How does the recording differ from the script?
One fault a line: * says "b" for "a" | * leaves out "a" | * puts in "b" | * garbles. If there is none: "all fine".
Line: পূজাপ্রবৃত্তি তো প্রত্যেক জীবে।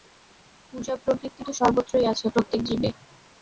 * puts in "সর্বত্রই আছে"